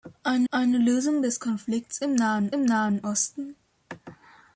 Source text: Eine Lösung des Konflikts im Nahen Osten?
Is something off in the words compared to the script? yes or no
yes